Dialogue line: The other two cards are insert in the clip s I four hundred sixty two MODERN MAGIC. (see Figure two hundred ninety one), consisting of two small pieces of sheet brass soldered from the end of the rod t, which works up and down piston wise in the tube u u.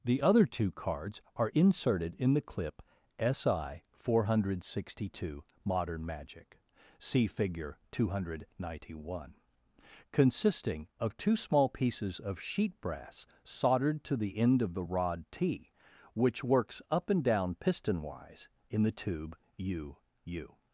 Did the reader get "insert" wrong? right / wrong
wrong